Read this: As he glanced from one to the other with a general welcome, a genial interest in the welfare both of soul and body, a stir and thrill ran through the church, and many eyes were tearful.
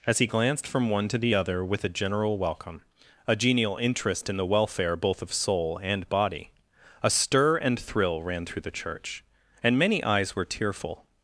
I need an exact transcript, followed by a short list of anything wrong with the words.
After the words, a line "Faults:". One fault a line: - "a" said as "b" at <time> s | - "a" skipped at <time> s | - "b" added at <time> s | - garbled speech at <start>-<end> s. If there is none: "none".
As he glanced from one to the other with a general welcome, a genial interest in the welfare both of soul and body, a stir and thrill ran through the church, and many eyes were tearful.
Faults:
none